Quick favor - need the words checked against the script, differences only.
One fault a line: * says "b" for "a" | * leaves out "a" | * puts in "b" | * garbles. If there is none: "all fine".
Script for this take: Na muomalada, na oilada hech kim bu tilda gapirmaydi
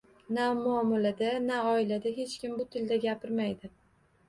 all fine